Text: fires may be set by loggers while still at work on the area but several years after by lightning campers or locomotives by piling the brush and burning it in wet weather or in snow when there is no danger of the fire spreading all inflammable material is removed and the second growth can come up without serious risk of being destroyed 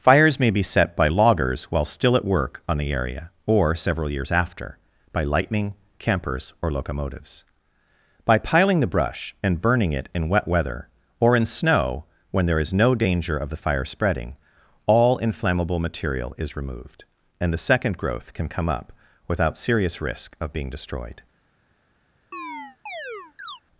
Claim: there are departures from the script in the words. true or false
true